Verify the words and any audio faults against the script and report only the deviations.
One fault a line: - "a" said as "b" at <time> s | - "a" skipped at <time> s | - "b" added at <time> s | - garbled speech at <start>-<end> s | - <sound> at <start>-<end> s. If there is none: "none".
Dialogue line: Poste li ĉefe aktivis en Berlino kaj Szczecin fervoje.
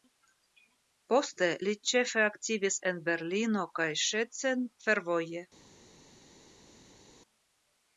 none